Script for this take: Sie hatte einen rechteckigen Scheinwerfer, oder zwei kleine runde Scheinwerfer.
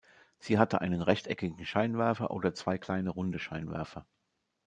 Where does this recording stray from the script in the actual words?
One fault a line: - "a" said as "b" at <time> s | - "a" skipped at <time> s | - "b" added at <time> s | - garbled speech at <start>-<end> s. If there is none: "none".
none